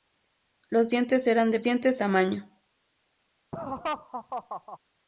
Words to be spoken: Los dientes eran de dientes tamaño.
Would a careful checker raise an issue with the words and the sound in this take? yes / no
yes